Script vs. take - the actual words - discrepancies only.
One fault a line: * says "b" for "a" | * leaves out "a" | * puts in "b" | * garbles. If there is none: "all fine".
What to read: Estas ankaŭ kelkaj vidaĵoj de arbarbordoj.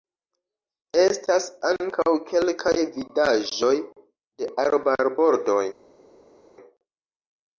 all fine